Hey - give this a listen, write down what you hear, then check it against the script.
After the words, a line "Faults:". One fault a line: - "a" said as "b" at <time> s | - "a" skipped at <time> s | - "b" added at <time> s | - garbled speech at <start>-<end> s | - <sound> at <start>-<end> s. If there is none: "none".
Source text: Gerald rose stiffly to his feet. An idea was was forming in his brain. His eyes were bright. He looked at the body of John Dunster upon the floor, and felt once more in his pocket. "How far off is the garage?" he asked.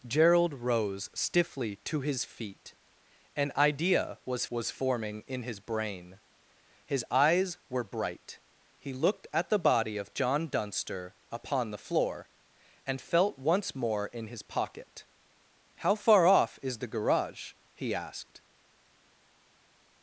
Gerald rose stiffly to his feet. An idea was was forming in his brain. His eyes were bright. He looked at the body of John Dunster upon the floor, and felt once more in his pocket. "How far off is the garage?" he asked.
Faults:
none